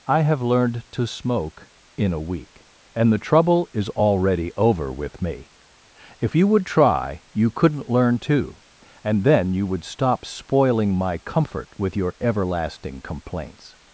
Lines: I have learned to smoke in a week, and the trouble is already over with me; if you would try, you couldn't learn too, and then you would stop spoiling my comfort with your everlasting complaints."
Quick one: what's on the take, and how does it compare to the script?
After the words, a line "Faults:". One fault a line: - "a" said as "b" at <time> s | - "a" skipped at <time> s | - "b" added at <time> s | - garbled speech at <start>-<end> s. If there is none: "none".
I have learned to smoke in a week, and the trouble is already over with me; if you would try, you couldn't learn too, and then you would stop spoiling my comfort with your everlasting complaints."
Faults:
none